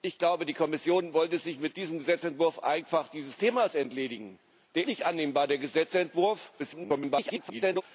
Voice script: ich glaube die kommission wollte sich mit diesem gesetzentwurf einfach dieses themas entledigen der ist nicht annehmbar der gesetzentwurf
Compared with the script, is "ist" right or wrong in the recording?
wrong